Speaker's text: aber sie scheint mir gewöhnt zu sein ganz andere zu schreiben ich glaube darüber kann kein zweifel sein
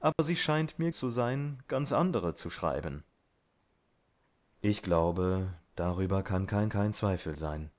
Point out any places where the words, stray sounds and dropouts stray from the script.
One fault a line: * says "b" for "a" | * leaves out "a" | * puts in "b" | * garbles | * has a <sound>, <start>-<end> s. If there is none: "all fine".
* has a dropout, 0.1-0.2 s
* leaves out "gewöhnt"
* puts in "kein"